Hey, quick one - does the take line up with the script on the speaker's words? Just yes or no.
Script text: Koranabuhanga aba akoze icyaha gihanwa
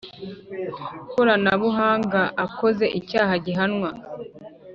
no